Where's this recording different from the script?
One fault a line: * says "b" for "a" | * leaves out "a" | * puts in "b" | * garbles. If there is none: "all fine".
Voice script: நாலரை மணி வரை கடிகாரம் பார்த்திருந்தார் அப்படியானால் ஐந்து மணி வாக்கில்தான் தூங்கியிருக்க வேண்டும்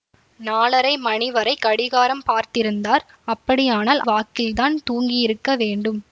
* leaves out "ஐந்து மணி"